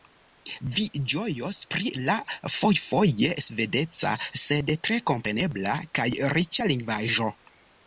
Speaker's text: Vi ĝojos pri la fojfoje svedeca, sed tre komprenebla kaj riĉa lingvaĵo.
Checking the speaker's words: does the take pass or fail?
pass